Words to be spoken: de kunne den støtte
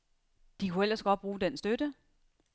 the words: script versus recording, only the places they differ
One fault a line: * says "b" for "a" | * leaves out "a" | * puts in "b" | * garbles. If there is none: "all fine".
* puts in "ellers godt bruge"